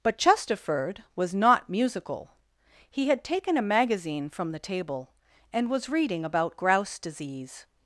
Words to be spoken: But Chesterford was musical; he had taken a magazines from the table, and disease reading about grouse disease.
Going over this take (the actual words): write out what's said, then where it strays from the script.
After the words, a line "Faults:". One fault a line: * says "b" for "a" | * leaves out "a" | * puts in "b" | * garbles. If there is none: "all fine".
But Chesterford was not musical; he had taken a magazine from the table, and was reading about grouse disease.
Faults:
* puts in "not"
* says "magazine" for "magazines"
* says "was" for "disease"